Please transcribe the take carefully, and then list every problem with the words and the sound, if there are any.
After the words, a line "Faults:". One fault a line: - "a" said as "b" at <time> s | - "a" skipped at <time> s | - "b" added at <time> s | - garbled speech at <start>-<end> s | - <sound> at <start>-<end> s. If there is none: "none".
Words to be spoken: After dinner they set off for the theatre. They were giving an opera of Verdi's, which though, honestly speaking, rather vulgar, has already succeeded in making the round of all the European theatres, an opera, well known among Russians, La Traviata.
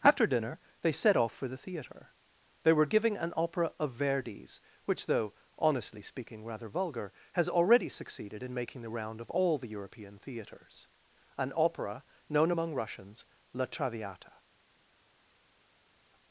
After dinner they set off for the theatre. They were giving an opera of Verdi's, which though, honestly speaking, rather vulgar, has already succeeded in making the round of all the European theatres, an opera, known among Russians, La Traviata.
Faults:
- "well" skipped at 12.0 s